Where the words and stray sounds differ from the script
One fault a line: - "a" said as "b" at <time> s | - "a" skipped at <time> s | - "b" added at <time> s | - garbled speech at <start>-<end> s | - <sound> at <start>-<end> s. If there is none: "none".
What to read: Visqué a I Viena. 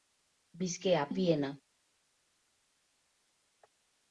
none